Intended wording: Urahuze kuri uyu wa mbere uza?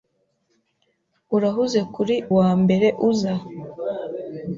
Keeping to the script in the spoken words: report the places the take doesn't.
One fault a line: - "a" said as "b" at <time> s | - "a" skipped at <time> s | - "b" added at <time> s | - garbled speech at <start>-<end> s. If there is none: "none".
- "uyu" skipped at 2.1 s